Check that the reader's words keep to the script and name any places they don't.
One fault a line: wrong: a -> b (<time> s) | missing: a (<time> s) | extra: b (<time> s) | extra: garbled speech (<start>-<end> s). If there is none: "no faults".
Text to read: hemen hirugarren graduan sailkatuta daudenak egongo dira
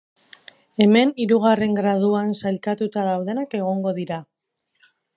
no faults